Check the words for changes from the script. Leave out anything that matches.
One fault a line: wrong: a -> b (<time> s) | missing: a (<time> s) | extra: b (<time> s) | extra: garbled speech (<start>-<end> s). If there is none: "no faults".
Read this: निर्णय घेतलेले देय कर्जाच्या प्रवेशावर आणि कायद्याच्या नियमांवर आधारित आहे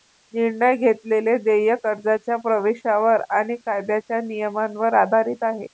no faults